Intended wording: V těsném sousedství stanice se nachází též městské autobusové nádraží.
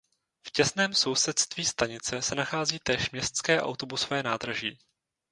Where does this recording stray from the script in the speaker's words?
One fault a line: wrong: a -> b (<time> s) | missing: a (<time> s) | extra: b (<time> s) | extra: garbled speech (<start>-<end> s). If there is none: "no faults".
no faults